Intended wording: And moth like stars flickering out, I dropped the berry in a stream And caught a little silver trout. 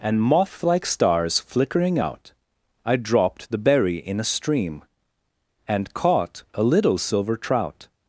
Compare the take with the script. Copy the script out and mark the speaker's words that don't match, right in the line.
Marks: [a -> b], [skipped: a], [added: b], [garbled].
And moth like stars flickering out, I dropped the berry in a stream And caught a little silver trout.